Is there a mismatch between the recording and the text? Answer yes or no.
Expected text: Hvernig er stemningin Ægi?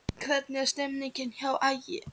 yes